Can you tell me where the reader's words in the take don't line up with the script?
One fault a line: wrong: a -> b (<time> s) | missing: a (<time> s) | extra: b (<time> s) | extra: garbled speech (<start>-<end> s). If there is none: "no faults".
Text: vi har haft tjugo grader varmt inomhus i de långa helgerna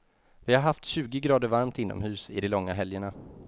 no faults